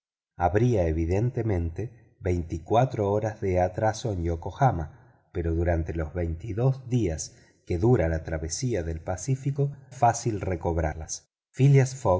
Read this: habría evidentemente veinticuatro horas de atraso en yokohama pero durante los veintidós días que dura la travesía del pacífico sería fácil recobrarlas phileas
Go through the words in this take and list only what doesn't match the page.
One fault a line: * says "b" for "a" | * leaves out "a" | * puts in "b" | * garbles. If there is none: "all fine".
* leaves out "sería"